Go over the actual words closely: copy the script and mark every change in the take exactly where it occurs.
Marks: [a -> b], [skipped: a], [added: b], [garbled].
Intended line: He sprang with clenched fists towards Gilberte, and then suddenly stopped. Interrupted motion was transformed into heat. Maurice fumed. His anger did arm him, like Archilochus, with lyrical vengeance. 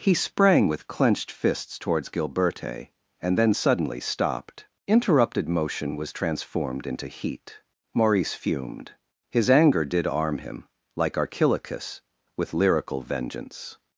He sprang with clenched fists towards Gilberte, and then suddenly stopped. Interrupted motion was transformed into heat. Maurice fumed. His anger did arm him, like Archilochus, with lyrical vengeance.